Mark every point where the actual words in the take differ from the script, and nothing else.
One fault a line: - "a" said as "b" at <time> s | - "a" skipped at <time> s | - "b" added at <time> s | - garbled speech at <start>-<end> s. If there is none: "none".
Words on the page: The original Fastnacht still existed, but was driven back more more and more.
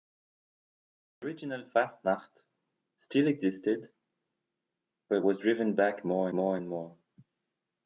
none